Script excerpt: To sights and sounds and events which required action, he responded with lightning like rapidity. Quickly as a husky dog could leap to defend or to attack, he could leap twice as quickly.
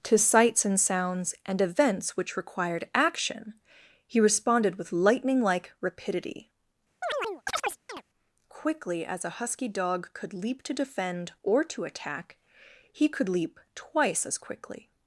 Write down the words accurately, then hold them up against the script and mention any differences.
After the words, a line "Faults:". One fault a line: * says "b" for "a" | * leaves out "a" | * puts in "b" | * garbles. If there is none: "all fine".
To sights and sounds and events which required action, he responded with lightning like rapidity. Quickly as a husky dog could leap to defend or to attack, he could leap twice as quickly.
Faults:
all fine